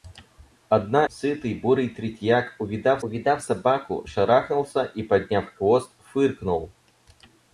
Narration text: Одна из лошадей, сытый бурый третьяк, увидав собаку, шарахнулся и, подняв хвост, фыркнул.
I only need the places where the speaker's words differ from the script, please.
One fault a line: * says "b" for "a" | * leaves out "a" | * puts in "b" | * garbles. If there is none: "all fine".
* leaves out "из лошадей"
* puts in "увидав"